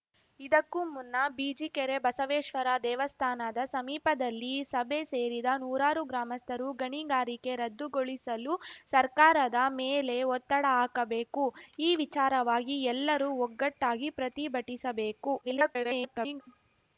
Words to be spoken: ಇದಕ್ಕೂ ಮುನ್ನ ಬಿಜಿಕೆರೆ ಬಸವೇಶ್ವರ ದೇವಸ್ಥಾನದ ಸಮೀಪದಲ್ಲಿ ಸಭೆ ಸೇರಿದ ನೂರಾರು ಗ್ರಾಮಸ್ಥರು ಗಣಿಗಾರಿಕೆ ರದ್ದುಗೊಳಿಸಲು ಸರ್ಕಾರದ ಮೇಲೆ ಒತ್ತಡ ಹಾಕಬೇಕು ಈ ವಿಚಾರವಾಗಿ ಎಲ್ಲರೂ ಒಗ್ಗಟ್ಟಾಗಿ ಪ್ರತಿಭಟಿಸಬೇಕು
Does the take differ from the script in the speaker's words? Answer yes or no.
yes